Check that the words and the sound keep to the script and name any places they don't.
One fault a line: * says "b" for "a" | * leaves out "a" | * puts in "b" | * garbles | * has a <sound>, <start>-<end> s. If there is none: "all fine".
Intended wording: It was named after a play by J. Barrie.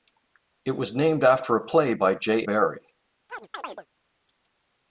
* has a chirp, 3.3-3.9 s